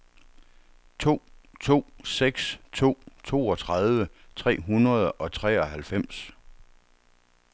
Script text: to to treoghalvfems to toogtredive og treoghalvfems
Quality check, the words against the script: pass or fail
fail